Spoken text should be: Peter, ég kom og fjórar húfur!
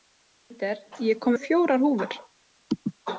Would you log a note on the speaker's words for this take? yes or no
no